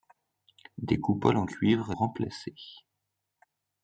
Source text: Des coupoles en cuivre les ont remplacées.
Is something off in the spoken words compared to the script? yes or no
yes